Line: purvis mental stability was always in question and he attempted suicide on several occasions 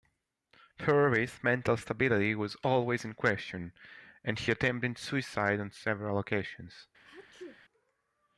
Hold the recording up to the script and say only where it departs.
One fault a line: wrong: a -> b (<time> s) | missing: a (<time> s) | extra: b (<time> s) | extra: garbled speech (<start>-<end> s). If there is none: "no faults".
no faults